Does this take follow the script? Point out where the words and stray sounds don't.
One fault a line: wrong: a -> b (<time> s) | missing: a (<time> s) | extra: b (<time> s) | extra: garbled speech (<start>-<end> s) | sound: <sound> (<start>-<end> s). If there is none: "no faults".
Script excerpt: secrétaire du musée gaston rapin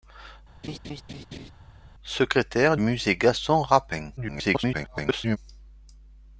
sound: laugh (0.6-1.5 s)
missing: du (2.8 s)
extra: garbled speech (4.2-5.4 s)